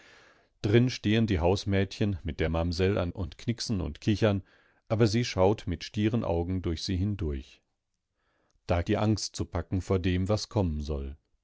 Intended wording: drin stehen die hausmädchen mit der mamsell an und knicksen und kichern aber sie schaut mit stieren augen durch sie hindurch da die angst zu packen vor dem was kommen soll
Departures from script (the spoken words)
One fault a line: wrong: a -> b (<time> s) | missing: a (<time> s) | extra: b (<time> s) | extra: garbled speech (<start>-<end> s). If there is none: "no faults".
no faults